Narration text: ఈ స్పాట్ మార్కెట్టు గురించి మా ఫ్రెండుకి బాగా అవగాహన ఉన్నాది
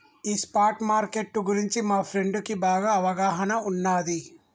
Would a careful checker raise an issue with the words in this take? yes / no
no